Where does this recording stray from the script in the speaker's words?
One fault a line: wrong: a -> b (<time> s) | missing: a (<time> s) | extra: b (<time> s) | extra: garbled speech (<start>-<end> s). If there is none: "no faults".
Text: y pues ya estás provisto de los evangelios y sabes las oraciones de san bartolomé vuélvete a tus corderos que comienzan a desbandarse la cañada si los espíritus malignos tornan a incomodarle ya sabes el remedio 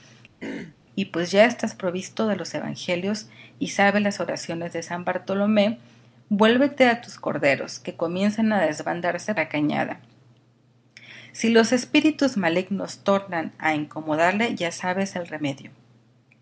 no faults